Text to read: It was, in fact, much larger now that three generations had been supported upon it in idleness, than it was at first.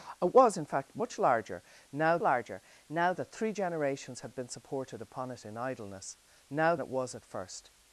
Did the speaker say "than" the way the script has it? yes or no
no